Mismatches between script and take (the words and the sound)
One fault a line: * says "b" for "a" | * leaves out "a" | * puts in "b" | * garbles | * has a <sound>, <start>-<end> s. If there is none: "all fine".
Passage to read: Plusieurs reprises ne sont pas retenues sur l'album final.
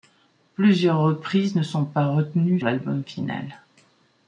* leaves out "sur"